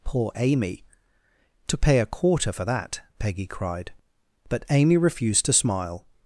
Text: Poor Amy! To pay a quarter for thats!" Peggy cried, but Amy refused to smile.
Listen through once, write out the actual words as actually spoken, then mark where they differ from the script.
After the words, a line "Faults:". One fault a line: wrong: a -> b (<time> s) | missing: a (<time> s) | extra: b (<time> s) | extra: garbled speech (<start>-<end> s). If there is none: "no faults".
Poor Amy! To pay a quarter for that!" Peggy cried, but Amy refused to smile.
Faults:
wrong: thats -> that (2.6 s)